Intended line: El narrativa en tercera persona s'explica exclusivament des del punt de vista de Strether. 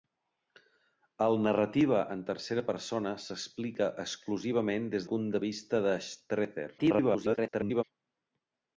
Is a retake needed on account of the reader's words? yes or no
yes